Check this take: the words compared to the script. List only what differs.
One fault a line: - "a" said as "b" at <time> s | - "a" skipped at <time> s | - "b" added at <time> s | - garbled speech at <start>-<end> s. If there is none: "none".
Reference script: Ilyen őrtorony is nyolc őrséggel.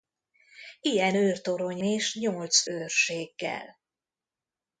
none